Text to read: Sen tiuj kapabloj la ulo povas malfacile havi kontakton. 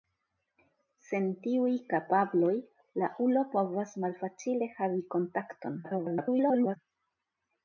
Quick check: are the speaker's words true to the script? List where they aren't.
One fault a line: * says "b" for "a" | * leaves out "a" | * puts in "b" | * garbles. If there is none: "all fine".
* garbles